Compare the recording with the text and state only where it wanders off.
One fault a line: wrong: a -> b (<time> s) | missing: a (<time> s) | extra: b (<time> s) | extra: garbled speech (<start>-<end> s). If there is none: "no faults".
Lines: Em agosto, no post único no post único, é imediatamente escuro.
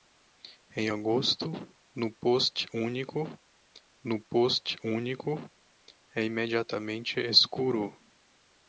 no faults